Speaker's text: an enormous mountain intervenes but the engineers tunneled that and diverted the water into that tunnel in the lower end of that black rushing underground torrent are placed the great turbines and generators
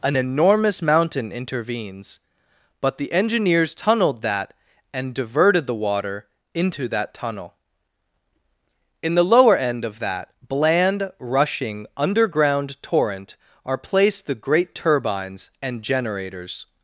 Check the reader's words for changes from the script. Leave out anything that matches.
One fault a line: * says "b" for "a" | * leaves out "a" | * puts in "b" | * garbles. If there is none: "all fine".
* says "bland" for "black"